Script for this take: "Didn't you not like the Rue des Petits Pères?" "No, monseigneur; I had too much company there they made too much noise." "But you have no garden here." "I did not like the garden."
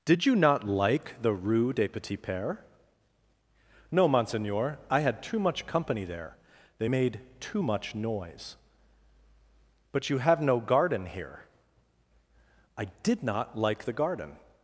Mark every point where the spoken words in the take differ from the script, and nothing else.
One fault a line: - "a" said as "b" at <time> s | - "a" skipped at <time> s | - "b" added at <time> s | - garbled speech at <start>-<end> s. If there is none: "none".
- "Didn't" said as "Did" at 0.0 s